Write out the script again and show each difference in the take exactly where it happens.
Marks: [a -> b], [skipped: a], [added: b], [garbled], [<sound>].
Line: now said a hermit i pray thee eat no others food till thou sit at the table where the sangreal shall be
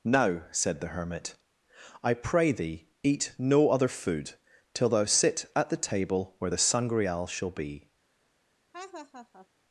now said [a -> the] hermit i pray thee eat no [others -> other] food till thou sit at the table where the sangreal shall be [laugh]